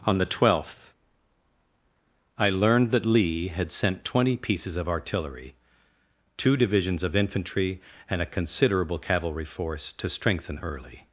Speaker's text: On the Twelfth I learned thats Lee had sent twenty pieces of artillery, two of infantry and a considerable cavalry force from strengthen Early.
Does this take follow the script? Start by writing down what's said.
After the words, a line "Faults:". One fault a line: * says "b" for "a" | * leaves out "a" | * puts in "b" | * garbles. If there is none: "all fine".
On the Twelfth I learned that Lee had sent twenty pieces of artillery, two divisions of infantry and a considerable cavalry force to strengthen Early.
Faults:
* says "that" for "thats"
* puts in "divisions"
* says "to" for "from"